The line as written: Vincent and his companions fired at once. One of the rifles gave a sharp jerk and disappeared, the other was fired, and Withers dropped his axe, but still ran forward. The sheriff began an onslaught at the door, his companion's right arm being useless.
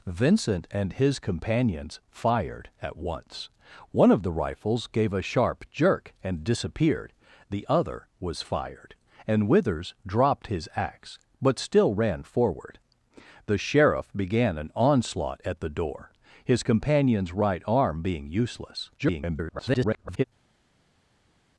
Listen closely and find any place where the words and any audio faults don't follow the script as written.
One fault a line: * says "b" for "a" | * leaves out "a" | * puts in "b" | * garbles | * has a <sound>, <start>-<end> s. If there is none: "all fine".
* garbles